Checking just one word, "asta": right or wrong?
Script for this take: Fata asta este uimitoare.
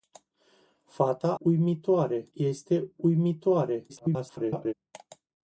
wrong